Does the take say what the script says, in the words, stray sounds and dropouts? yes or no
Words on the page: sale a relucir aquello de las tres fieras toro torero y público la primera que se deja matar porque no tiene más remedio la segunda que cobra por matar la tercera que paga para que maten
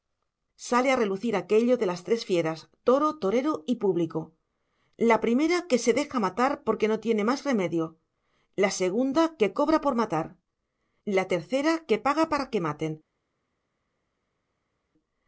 yes